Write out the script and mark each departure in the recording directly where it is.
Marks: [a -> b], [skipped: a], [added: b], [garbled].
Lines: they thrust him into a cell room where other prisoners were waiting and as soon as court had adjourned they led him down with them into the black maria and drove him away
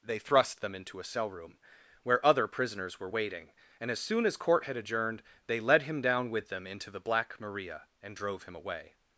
they thrust [him -> them] into a cell room where other prisoners were waiting and as soon as court had adjourned they led him down with them into the black maria and drove him away